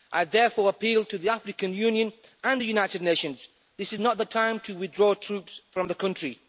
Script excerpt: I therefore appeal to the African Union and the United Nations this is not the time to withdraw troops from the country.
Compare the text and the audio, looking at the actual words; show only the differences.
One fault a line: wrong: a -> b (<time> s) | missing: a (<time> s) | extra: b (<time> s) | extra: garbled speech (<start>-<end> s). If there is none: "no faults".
no faults